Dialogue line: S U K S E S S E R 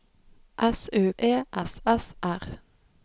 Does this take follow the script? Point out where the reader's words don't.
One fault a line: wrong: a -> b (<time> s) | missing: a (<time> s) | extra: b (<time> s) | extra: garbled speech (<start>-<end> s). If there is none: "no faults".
missing: K S (1.1 s)
missing: E (2.1 s)